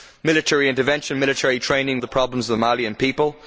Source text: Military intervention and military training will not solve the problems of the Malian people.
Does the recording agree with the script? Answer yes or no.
no